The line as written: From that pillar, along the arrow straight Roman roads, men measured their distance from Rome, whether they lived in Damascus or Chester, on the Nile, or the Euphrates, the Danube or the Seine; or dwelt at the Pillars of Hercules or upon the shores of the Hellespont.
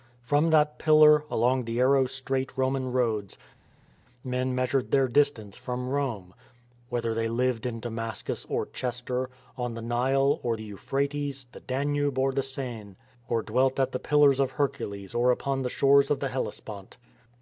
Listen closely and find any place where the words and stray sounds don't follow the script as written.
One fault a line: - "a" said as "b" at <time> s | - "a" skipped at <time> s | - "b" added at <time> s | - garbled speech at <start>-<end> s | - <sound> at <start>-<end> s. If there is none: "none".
none